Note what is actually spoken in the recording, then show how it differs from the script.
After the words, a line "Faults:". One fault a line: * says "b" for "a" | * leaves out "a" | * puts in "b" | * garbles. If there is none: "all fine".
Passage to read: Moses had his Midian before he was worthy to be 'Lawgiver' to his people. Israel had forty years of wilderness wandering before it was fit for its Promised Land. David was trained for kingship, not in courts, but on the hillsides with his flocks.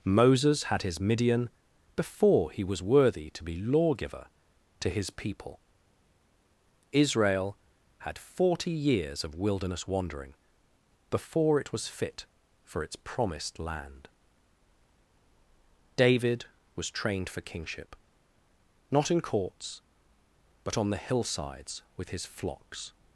Moses had his Midian before he was worthy to be 'Lawgiver' to his people. Israel had forty years of wilderness wandering before it was fit for its Promised Land. David was trained for kingship, not in courts, but on the hillsides with his flocks.
Faults:
all fine